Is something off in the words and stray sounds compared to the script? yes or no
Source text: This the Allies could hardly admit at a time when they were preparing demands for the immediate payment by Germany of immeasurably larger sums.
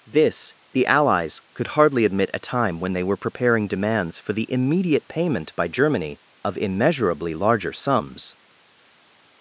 yes